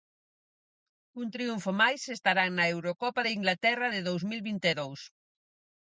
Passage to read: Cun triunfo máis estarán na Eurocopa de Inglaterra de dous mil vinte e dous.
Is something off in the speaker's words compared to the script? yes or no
no